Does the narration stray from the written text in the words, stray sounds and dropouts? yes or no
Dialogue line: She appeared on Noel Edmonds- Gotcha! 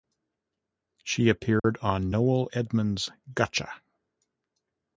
yes